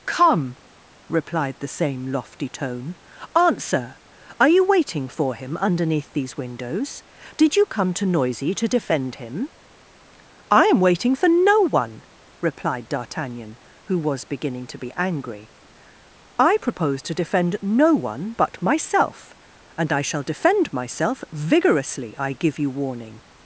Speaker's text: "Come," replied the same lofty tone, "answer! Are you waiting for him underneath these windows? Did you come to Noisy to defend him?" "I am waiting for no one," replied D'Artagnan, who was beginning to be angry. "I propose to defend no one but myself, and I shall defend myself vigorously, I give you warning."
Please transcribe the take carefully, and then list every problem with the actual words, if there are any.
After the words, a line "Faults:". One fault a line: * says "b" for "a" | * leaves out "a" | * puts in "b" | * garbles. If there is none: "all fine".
"Come," replied the same lofty tone, "answer! Are you waiting for him underneath these windows? Did you come to Noisy to defend him?" "I am waiting for no one," replied D'Artagnan, who was beginning to be angry. "I propose to defend no one but myself, and I shall defend myself vigorously, I give you warning."
Faults:
all fine